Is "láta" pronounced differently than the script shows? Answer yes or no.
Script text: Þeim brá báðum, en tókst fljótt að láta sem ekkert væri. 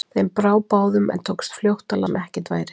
yes